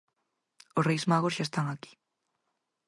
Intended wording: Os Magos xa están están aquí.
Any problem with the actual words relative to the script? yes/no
yes